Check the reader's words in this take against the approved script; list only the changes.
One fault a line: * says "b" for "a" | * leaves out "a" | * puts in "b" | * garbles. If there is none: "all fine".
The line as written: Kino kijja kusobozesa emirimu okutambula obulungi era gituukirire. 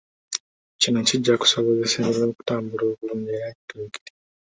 all fine